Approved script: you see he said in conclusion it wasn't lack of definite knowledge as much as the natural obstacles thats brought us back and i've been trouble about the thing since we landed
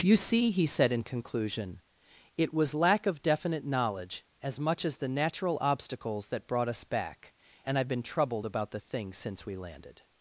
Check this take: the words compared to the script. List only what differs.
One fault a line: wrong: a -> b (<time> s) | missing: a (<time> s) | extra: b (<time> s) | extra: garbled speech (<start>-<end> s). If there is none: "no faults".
wrong: wasn't -> was (2.5 s)
wrong: thats -> that (6.3 s)
wrong: trouble -> troubled (8.0 s)